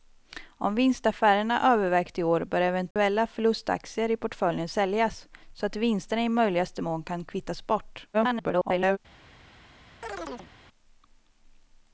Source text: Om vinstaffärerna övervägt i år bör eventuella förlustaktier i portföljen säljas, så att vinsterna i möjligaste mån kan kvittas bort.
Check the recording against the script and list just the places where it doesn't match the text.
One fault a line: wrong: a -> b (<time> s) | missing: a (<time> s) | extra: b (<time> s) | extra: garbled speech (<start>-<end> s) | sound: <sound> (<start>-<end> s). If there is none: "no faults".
sound: dropout (2.9-3.0 s)
extra: garbled speech (8.1-9.0 s)
sound: chirp (10.0-10.5 s)